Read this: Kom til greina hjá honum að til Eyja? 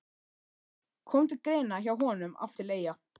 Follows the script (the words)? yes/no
yes